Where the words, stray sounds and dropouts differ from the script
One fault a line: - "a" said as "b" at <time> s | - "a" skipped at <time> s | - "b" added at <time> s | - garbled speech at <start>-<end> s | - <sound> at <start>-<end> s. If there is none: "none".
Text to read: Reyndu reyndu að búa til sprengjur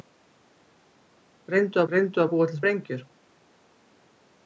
none